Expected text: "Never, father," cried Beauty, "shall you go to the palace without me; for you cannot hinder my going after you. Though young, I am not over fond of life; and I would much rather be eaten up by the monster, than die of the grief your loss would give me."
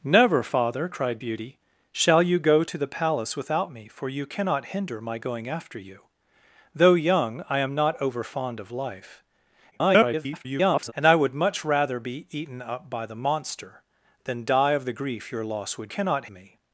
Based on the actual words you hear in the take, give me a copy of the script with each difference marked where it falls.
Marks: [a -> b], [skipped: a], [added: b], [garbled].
"Never, father," cried Beauty, "shall you go to the palace without me; for you cannot hinder my going after you. Though young, I am not over fond of life; [garbled] and I would much rather be eaten up by the monster, than die of the grief your loss would [give -> cannot] me."